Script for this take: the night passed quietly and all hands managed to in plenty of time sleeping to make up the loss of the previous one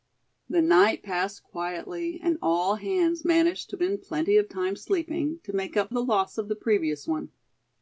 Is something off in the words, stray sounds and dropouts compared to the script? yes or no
no